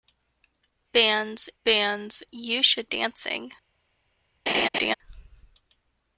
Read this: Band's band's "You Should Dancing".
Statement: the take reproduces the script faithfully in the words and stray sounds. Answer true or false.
false